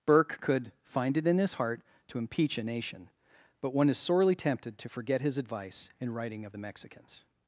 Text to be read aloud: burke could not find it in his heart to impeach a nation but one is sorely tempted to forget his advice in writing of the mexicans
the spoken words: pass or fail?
fail